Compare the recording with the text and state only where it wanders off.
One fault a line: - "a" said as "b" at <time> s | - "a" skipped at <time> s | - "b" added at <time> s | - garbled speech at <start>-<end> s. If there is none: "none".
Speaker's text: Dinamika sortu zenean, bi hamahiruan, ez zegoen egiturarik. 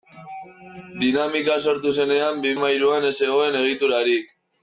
none